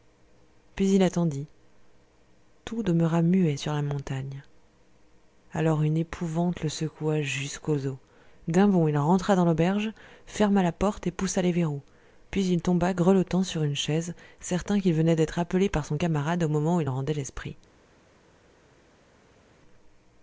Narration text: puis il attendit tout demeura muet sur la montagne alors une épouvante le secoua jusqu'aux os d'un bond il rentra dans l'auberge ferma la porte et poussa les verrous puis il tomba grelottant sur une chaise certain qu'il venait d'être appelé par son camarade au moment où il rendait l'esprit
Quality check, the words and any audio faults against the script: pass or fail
pass